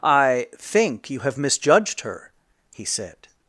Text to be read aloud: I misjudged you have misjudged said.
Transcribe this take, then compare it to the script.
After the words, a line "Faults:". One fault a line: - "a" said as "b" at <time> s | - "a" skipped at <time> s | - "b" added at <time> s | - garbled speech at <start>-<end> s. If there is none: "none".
I think you have misjudged her," he said.
Faults:
- "misjudged" said as "think" at 0.6 s
- "her he" added at 2.0 s